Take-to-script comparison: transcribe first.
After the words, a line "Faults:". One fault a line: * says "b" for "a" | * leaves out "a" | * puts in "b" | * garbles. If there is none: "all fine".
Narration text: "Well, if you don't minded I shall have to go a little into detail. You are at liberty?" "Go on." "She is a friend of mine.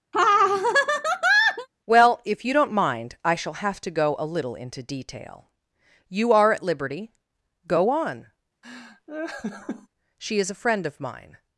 "Well, if you don't mind I shall have to go a little into detail. You are at liberty?" "Go on." "She is a friend of mine.
Faults:
* says "mind" for "minded"